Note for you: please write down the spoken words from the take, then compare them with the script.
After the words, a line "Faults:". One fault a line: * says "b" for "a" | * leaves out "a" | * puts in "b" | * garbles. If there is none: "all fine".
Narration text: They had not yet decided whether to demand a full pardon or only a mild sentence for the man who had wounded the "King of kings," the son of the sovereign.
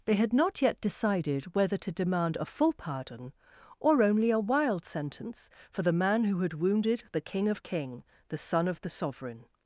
They had not yet decided whether to demand a full pardon or only a wild sentence for the man who had wounded the "King of king," the son of the sovereign.
Faults:
* says "wild" for "mild"
* says "king" for "kings"